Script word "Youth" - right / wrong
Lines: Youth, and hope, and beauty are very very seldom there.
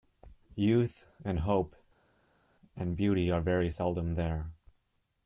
right